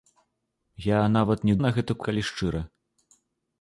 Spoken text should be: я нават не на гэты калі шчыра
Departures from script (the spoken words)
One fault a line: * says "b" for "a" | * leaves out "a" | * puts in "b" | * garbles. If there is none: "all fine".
all fine